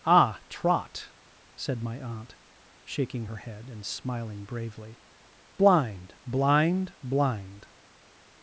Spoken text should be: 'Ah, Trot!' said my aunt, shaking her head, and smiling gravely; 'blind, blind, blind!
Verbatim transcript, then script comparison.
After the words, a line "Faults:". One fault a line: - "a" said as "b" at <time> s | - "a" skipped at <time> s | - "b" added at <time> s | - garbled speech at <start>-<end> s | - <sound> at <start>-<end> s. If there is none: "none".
'Ah, Trot!' said my aunt, shaking her head, and smiling bravely; 'blind, blind, blind!
Faults:
- "gravely" said as "bravely" at 4.5 s